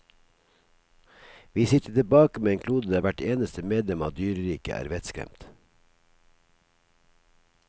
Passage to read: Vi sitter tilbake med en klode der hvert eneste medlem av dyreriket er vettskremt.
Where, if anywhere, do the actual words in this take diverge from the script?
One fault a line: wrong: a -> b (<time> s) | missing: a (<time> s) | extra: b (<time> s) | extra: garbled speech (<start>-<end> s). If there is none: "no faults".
no faults